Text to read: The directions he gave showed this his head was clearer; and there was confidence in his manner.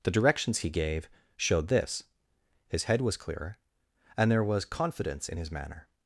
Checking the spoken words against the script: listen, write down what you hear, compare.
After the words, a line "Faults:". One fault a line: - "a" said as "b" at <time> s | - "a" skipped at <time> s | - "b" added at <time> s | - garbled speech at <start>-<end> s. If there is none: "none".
The directions he gave showed this his head was clearer; and there was confidence in his manner.
Faults:
none